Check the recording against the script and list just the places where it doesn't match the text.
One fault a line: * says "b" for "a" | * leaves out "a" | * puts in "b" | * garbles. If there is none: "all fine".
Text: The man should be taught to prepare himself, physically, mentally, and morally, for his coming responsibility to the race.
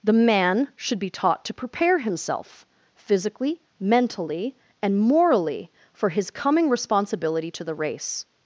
all fine